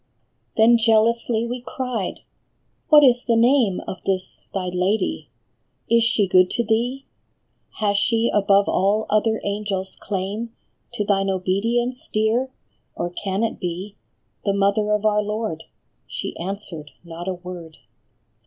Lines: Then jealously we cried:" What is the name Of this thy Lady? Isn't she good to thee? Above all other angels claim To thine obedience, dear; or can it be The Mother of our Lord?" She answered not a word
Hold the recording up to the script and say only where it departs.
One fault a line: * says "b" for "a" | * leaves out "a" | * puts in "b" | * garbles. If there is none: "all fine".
* says "Is" for "Isn't"
* puts in "Has she"